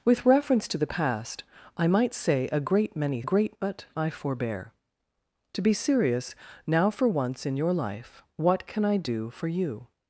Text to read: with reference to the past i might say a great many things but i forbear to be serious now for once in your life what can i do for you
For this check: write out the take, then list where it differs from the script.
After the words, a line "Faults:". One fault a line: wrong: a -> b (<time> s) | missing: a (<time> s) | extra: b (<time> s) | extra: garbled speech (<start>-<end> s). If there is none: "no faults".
with reference to the past i might say a great many great but i forbear to be serious now for once in your life what can i do for you
Faults:
wrong: things -> great (3.2 s)